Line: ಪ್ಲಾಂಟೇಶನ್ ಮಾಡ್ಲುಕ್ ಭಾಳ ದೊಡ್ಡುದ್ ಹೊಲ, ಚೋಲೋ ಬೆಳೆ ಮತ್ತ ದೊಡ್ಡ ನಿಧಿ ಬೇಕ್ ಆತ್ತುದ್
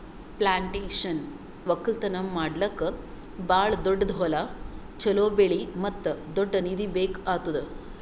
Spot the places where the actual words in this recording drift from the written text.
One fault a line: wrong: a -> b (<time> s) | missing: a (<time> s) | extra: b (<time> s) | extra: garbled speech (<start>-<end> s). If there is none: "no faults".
extra: ಒಕ್ಕಲ್ತನ (1.7 s)